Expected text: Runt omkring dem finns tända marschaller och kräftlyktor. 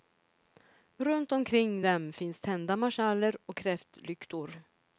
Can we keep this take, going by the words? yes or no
yes